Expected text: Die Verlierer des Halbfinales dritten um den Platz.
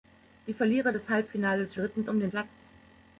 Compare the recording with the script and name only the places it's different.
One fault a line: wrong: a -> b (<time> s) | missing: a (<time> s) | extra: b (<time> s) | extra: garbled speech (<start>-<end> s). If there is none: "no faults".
no faults